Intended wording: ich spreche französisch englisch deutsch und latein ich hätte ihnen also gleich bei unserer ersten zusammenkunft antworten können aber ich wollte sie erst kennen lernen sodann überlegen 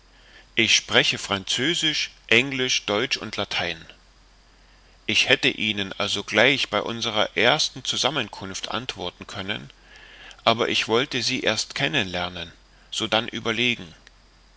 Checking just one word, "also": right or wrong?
right